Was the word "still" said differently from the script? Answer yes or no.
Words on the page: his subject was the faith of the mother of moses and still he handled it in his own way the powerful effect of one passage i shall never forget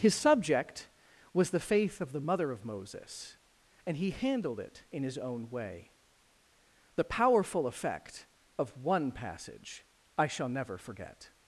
yes